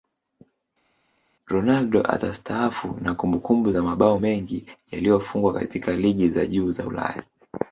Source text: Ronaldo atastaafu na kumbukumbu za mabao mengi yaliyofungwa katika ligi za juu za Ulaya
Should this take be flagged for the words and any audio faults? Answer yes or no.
no